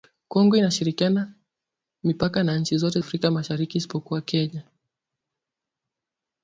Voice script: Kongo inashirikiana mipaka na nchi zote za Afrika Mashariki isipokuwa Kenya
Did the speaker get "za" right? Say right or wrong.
wrong